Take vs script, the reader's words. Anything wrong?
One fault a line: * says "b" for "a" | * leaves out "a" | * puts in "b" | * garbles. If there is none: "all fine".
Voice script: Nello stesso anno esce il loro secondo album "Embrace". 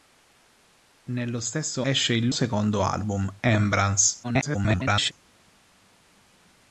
* leaves out "anno"
* leaves out "loro"
* garbles